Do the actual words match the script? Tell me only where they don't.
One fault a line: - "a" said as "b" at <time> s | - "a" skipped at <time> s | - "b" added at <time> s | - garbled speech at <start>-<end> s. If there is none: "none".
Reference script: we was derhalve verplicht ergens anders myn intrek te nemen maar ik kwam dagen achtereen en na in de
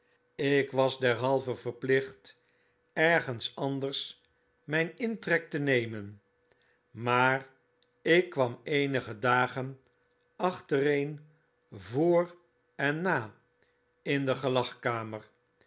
- "we" said as "ik" at 0.3 s
- "eenige" added at 8.6 s
- "voor" added at 11.7 s